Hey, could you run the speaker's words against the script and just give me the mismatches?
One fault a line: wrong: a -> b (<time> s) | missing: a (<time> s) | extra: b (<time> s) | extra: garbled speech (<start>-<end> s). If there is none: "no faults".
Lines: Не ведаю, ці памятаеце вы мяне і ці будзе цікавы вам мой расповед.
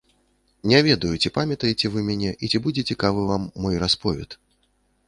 no faults